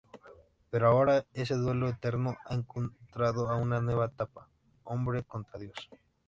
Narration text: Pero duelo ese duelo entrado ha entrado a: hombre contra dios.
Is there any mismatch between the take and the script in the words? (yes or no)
yes